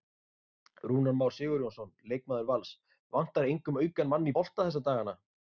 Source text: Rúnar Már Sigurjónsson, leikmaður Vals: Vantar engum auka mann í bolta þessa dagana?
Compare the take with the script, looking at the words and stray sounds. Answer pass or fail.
pass